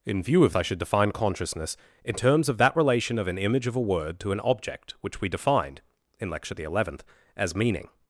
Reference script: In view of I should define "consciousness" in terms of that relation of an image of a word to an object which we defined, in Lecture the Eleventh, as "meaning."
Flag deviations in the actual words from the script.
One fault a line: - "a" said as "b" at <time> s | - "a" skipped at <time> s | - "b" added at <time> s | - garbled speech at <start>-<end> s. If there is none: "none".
none